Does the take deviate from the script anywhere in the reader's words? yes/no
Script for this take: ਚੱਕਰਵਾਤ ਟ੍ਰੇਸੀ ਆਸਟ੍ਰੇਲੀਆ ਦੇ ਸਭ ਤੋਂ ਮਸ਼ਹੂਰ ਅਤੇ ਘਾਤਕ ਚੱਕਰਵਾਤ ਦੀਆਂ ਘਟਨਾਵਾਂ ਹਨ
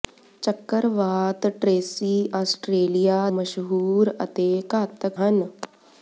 yes